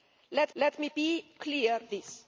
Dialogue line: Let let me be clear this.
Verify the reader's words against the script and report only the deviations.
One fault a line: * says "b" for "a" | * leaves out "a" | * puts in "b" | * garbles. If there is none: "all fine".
all fine